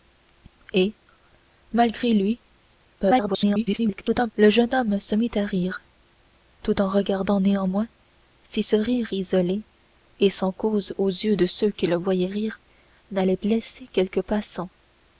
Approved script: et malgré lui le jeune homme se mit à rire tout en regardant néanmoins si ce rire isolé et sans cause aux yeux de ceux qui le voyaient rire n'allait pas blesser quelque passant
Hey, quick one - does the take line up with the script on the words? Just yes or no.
no